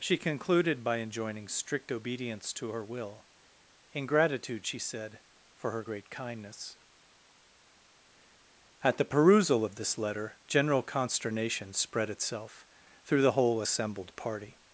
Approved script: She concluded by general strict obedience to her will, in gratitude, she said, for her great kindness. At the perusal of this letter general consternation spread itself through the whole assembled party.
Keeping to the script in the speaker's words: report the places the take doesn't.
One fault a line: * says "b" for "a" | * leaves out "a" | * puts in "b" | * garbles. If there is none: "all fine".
* says "enjoining" for "general"